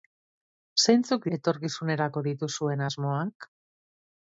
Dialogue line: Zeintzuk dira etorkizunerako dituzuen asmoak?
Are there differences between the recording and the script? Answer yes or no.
yes